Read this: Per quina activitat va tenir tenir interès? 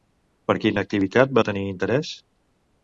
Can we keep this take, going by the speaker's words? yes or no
no